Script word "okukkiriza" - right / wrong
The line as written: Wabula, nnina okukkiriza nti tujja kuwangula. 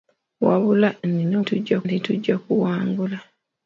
wrong